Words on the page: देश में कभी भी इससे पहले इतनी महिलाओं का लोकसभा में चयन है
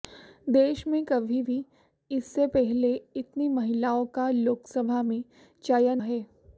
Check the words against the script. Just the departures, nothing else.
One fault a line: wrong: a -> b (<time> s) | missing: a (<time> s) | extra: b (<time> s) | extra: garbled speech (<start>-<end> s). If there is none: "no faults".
no faults